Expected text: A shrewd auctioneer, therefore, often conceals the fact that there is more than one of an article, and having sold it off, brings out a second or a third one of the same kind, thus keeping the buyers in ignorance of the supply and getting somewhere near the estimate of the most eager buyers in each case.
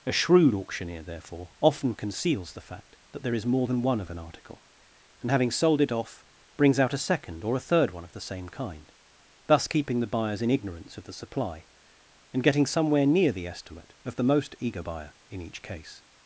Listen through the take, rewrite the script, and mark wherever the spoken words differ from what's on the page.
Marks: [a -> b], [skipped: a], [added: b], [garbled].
A shrewd auctioneer, therefore, often conceals the fact that there is more than one of an article, and having sold it off, brings out a second or a third one of the same kind, thus keeping the buyers in ignorance of the supply and getting somewhere near the estimate of the most eager [buyers -> buyer] in each case.